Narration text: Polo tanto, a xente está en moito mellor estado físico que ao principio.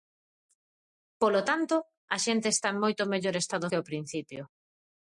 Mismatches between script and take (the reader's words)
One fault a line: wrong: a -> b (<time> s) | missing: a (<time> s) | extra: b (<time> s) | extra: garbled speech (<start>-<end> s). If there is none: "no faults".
missing: físico (3.7 s)